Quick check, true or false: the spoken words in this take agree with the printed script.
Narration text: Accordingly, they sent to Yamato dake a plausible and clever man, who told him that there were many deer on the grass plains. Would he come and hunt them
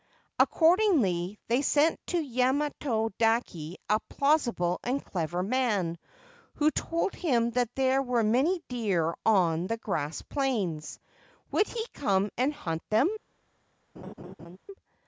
true